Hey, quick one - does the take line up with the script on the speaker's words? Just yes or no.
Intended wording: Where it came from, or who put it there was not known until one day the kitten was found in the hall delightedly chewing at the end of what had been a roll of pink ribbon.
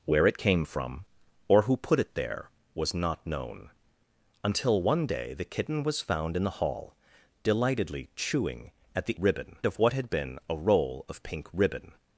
no